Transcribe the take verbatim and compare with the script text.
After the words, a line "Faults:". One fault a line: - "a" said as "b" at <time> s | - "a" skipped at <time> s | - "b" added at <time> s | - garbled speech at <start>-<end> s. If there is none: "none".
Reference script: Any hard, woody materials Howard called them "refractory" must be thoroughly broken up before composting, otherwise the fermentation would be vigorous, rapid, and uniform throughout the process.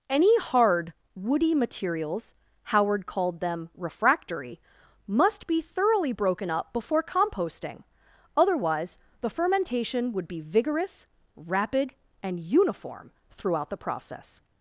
Any hard, woody materials Howard called them "refractory" must be thoroughly broken up before composting, otherwise the fermentation would be vigorous, rapid, and uniform throughout the process.
Faults:
none